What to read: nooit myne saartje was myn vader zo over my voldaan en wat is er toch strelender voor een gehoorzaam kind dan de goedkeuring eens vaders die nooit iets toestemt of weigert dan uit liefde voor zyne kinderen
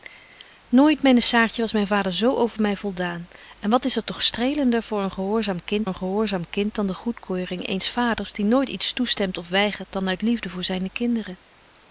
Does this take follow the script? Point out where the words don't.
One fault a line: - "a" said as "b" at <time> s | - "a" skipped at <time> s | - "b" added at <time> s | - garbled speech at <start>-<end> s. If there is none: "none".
- "een gehoorzaam kind" added at 5.8 s